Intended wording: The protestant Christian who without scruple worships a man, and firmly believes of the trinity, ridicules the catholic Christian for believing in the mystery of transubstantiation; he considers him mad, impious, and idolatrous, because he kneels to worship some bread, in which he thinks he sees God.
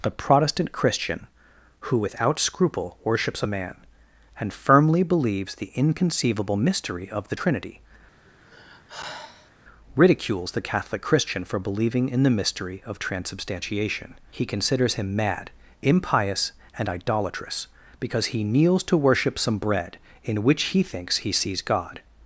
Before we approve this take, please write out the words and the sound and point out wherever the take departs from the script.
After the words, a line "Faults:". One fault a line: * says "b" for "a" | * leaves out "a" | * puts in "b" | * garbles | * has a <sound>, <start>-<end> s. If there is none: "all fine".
The protestant Christian who without scruple worships a man, and firmly believes the inconceivable mystery of the trinity, ridicules the catholic Christian for believing in the mystery of transubstantiation; he considers him mad, impious, and idolatrous, because he kneels to worship some bread, in which he thinks he sees God.
Faults:
* puts in "the inconceivable mystery"
* has a sigh, 8.2-9.5 s